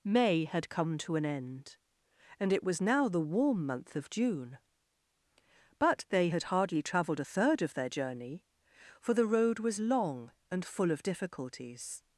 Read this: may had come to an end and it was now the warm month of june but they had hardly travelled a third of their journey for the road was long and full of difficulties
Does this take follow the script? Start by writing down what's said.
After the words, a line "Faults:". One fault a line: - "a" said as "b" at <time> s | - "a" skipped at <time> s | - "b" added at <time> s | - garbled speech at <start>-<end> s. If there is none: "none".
may had come to an end and it was now the warm month of june but they had hardly travelled a third of their journey for the road was long and full of difficulties
Faults:
none